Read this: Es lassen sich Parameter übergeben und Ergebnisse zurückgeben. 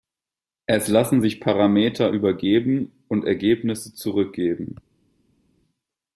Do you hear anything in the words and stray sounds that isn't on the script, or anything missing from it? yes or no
no